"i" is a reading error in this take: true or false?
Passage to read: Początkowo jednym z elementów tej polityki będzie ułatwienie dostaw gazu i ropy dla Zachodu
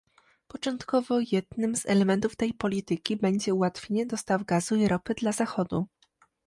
false